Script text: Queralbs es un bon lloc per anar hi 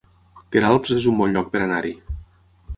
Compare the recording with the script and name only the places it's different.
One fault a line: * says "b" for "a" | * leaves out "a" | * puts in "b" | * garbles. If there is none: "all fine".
all fine